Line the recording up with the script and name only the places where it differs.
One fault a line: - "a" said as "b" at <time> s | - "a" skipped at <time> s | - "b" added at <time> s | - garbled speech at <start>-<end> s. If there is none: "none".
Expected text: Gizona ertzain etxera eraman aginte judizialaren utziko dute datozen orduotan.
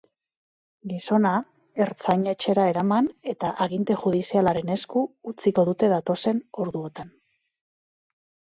- "eta" added at 3.4 s
- "esku" added at 4.8 s